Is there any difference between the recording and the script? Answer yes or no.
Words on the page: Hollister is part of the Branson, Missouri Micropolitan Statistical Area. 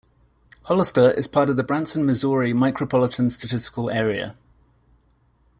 no